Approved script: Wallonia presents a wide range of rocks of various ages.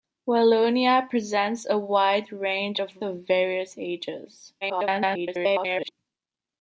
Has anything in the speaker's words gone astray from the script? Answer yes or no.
yes